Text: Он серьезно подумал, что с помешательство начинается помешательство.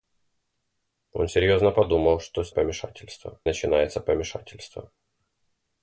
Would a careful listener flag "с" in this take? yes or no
no